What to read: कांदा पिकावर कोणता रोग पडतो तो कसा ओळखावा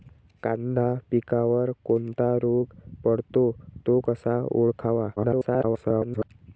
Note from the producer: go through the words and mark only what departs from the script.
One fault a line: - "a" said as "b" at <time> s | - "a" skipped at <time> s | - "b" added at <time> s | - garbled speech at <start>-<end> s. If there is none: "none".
- garbled speech at 5.2-6.3 s